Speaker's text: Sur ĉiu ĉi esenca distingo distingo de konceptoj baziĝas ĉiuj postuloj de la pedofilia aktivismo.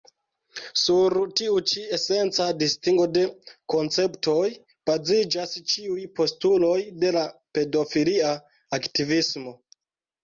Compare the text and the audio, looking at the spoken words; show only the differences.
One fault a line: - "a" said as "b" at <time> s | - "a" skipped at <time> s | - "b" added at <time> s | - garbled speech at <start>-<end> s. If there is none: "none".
- "ĉiu" said as "tiu" at 1.4 s
- "distingo" skipped at 3.1 s